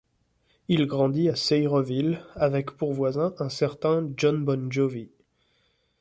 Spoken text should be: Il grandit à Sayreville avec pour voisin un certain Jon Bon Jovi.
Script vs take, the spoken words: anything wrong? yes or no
no